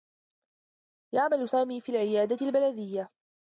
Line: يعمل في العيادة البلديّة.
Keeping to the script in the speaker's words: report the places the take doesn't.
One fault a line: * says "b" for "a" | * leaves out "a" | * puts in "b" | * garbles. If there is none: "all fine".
* puts in "سامي"